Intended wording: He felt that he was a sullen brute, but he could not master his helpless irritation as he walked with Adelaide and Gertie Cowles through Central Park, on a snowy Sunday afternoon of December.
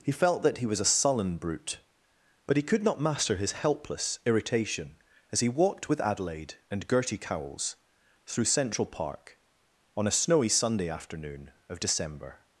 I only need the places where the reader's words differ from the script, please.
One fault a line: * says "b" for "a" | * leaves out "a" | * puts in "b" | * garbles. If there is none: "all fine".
all fine